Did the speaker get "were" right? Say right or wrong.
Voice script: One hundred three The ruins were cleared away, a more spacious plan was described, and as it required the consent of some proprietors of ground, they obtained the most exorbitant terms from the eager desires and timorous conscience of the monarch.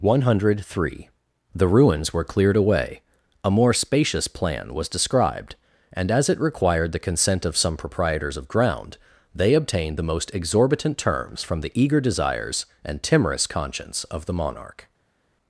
right